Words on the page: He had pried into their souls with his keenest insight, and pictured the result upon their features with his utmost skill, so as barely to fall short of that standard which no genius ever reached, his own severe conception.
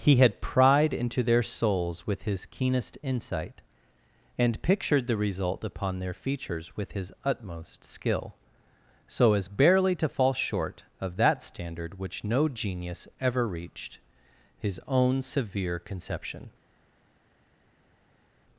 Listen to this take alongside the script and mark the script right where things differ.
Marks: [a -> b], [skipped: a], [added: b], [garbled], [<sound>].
He had pried into their souls with his keenest insight, and pictured the result upon their features with his utmost skill, so as barely to fall short of that standard which no genius ever reached, his own severe conception.